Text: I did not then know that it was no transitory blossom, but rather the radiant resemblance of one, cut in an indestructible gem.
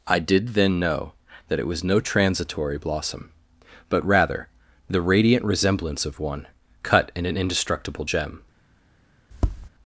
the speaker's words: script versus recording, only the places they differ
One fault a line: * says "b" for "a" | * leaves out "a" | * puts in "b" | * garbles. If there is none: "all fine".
* leaves out "not"